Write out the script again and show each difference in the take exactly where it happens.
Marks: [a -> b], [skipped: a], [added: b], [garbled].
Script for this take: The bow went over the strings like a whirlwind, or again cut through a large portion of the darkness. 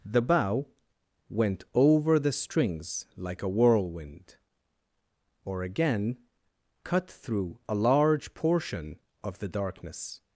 The bow went over the strings like a whirlwind, or again cut through a large portion of the darkness.